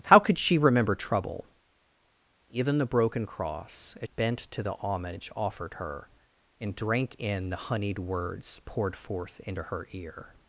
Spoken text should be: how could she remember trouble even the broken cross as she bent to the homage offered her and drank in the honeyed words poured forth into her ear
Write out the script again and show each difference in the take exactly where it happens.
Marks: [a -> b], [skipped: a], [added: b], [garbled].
how could she remember trouble even the broken cross as [skipped: she] bent to the homage offered her and drank in the honeyed words poured forth into her ear